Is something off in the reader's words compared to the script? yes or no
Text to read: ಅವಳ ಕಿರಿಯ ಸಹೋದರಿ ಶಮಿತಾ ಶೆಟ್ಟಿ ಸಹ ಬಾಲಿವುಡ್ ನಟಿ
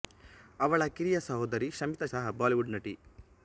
yes